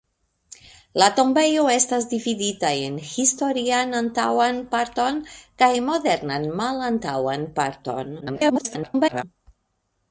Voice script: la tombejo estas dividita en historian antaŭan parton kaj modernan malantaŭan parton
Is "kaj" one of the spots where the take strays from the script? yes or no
no